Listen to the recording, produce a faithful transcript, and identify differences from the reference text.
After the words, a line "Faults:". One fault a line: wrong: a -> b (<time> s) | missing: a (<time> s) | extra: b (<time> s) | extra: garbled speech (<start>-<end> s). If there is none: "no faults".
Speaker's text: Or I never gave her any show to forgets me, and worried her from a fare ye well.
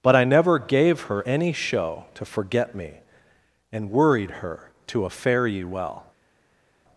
But I never gave her any show to forget me, and worried her to a fare ye well.
Faults:
wrong: Or -> But (0.0 s)
wrong: forgets -> forget (2.2 s)
wrong: from -> to (4.9 s)